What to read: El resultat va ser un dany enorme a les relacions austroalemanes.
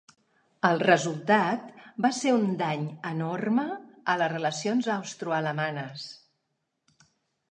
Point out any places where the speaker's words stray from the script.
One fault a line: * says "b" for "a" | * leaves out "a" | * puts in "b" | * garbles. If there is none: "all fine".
all fine